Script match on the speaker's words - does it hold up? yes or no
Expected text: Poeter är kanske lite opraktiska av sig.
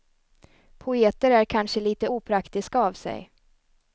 yes